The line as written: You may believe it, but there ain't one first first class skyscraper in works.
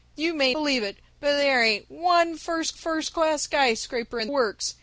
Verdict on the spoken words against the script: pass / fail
pass